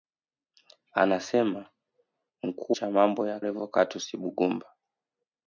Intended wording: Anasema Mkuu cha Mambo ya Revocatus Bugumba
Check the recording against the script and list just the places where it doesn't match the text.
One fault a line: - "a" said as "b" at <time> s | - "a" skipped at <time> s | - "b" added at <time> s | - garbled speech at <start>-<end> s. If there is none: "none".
none